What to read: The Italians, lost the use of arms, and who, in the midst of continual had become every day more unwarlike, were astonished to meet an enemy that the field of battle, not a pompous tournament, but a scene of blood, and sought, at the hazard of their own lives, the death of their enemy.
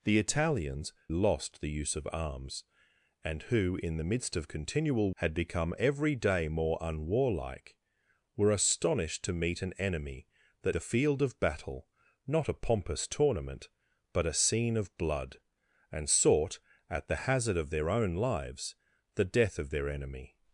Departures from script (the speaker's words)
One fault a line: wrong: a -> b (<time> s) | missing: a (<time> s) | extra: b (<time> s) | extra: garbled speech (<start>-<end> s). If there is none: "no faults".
no faults